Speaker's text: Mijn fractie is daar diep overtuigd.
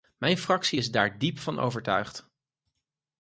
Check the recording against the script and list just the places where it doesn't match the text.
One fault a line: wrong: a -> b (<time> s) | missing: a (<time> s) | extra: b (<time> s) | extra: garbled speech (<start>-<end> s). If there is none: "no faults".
extra: van (1.4 s)